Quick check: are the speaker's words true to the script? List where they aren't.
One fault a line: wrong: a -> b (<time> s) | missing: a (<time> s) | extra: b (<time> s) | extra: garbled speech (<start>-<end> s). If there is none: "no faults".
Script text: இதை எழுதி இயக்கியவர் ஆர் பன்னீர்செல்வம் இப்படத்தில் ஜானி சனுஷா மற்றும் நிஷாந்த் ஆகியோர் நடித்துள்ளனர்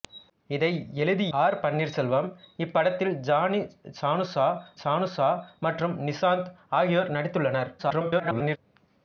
missing: இயக்கியவர் (1.2 s)
extra: சனுஷா (4.8 s)
extra: garbled speech (7.8-8.6 s)